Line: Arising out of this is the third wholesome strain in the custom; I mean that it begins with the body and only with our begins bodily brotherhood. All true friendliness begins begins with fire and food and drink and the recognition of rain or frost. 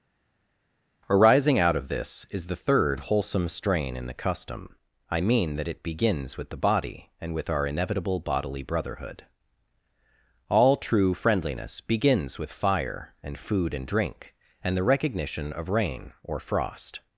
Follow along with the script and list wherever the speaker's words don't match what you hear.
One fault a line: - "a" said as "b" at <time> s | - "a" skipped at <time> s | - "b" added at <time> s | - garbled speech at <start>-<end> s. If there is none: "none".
- "only" skipped at 7.3 s
- "begins" said as "inevitable" at 7.7 s
- "begins" skipped at 12.4 s